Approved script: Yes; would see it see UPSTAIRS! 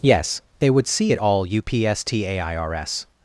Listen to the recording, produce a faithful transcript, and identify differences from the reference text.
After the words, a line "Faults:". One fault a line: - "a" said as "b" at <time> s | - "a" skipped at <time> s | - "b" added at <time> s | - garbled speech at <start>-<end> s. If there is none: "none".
Yes; they would see it all UPSTAIRS!
Faults:
- "they" added at 0.6 s
- "see" said as "all" at 1.2 s